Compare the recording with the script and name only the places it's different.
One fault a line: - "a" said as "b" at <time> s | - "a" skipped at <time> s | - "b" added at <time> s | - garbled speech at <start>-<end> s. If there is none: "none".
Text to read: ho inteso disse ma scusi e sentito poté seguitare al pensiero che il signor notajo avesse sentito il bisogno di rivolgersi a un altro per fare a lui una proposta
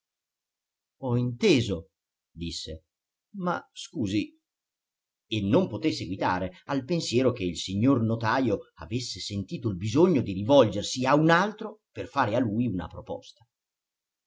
- "sentito" said as "non" at 5.4 s